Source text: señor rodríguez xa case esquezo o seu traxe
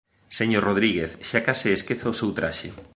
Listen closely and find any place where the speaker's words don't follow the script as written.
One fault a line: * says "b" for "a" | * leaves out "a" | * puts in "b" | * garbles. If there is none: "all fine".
all fine